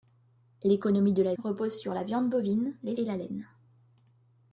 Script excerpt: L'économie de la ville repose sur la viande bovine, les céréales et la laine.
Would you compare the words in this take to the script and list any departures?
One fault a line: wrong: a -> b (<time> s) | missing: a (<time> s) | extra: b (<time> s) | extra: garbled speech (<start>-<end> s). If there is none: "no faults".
missing: ville (1.4 s)
missing: céréales (3.0 s)